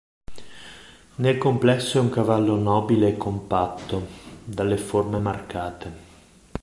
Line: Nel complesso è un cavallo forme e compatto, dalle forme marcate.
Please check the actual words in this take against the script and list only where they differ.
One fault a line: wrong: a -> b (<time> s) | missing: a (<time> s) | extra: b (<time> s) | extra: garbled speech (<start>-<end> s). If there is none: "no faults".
wrong: forme -> nobile (2.5 s)